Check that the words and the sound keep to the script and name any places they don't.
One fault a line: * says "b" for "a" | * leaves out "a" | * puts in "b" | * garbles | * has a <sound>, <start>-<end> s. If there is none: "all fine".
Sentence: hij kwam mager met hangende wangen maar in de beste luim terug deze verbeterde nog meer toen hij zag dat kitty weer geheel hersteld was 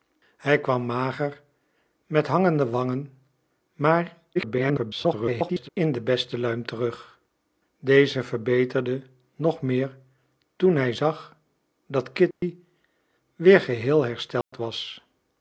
* garbles
* has a dropout, 12.3-12.4 s
* has a dropout, 14.4-14.5 s